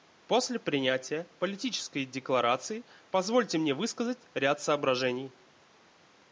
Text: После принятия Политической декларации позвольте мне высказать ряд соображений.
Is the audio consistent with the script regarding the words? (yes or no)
yes